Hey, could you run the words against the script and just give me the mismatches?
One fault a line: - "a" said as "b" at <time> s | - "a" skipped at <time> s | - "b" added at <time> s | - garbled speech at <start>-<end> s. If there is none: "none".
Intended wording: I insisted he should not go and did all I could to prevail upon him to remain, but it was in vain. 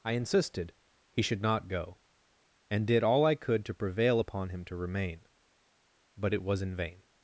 none